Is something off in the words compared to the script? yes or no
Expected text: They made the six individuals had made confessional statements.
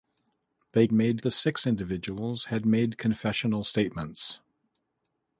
no